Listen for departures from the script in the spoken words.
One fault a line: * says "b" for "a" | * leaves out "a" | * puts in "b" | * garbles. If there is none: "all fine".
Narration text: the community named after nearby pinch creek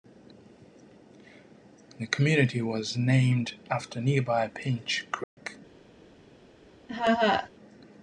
* puts in "was"